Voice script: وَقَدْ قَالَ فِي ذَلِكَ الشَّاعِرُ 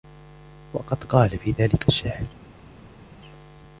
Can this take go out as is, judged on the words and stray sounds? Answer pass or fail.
pass